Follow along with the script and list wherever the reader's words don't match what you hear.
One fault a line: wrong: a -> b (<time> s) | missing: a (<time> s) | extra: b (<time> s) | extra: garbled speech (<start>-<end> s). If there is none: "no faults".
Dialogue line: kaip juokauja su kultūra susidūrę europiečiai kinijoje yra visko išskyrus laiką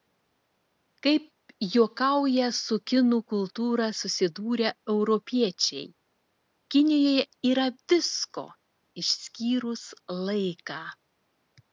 extra: kinų (2.9 s)